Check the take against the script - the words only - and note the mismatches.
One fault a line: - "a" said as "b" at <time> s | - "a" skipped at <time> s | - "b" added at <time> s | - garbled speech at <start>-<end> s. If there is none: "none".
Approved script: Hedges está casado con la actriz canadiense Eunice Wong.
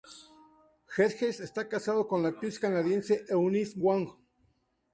none